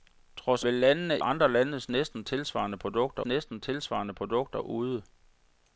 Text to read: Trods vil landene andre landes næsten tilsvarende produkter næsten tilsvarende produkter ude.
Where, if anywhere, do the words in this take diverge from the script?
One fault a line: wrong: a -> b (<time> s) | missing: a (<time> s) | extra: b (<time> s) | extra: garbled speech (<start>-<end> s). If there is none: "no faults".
no faults